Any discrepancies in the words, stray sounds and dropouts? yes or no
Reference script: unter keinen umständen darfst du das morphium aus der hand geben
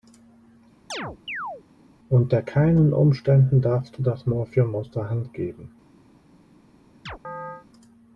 yes